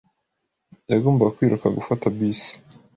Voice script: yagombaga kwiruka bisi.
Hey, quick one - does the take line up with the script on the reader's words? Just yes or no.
no